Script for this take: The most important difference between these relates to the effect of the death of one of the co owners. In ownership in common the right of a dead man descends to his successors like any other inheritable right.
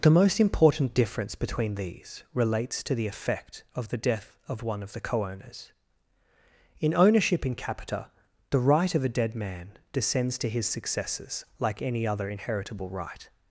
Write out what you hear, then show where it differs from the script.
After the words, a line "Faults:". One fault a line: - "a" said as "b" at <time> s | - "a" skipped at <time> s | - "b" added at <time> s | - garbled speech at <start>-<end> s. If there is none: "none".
The most important difference between these relates to the effect of the death of one of the co owners. In ownership in capita the right of a dead man descends to his successors like any other inheritable right.
Faults:
- "common" said as "capita" at 7.5 s